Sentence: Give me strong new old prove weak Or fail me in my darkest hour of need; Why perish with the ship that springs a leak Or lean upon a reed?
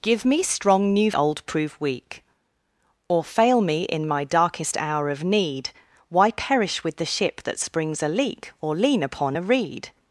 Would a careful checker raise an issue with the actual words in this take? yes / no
no